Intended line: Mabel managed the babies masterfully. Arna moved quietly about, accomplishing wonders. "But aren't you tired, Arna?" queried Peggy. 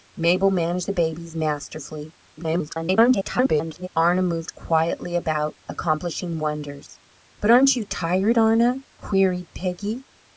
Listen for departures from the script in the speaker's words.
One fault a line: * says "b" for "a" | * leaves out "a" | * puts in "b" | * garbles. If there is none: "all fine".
* garbles